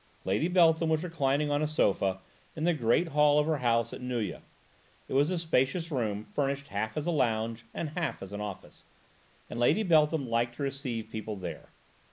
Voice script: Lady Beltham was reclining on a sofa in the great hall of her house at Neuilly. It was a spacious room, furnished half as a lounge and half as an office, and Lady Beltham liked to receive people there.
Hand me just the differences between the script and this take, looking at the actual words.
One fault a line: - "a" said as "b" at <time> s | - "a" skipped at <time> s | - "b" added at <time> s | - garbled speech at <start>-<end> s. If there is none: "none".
none